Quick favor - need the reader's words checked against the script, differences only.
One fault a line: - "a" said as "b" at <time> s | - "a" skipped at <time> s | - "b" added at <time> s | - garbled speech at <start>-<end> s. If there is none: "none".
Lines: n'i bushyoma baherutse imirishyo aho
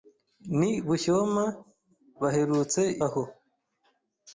- "imirishyo" skipped at 2.8 s